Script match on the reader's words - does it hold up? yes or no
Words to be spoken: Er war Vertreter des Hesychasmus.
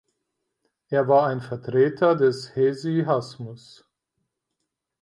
no